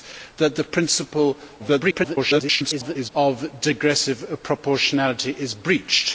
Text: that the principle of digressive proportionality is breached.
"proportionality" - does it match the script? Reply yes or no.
yes